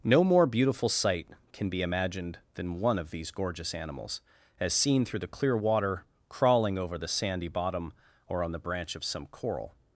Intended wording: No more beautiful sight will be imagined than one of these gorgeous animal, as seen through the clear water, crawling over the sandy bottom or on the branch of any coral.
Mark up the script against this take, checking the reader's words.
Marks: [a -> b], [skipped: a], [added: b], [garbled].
No more beautiful sight [will -> can] be imagined than one of these gorgeous [animal, -> animals] as seen through the clear water, crawling over the sandy bottom or on the branch of [any -> some] coral.